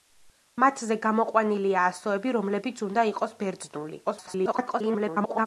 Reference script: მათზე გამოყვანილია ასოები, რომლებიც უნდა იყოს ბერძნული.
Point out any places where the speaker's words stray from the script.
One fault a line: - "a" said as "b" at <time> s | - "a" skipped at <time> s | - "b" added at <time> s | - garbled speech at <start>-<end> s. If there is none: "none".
- garbled speech at 4.0-5.5 s